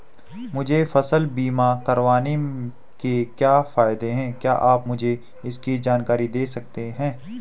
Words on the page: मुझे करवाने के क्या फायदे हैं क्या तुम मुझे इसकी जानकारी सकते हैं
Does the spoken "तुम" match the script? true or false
false